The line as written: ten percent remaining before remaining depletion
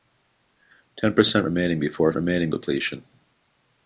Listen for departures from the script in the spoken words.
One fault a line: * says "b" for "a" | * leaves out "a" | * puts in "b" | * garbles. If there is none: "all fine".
all fine